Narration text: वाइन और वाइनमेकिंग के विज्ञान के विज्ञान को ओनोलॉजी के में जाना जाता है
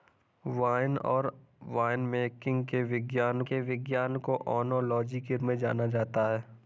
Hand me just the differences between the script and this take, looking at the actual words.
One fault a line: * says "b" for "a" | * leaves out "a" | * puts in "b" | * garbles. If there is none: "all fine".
all fine